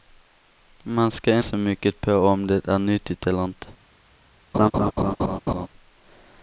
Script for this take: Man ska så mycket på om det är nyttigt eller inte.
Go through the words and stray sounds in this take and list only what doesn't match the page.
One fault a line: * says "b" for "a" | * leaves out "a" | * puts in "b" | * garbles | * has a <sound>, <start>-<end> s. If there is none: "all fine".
* has a laugh, 4.5-5.7 s